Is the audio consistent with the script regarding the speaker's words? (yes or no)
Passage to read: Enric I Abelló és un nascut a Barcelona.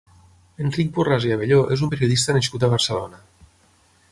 no